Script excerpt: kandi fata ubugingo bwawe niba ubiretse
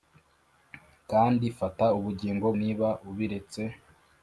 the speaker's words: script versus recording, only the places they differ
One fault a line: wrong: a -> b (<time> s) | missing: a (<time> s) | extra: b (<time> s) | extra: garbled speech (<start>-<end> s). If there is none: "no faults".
missing: bwawe (2.5 s)